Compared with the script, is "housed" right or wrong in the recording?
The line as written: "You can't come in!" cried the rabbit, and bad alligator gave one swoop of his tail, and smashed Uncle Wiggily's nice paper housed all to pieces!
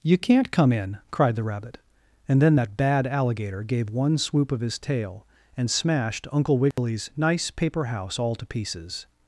wrong